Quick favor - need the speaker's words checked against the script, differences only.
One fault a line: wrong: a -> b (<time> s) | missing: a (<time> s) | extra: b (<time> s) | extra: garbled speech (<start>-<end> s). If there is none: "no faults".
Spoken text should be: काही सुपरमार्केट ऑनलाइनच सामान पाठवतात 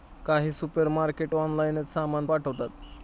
no faults